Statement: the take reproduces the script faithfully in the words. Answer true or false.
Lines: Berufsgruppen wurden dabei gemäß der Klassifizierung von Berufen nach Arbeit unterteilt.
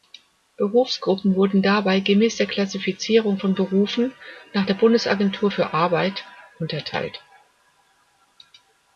false